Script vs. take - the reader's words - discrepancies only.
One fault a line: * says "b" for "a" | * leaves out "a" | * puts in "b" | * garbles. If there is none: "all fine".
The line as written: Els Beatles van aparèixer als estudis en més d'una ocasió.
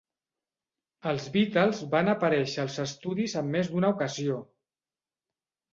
all fine